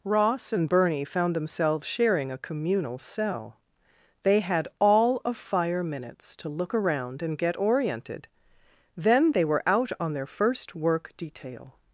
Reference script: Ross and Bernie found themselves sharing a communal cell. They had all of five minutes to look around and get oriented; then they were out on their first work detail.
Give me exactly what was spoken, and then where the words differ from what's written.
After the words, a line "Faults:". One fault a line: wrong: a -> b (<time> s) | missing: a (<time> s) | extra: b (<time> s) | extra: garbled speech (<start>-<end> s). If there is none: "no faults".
Ross and Bernie found themselves sharing a communal cell. They had all of fire minutes to look around and get oriented; then they were out on their first work detail.
Faults:
wrong: five -> fire (5.4 s)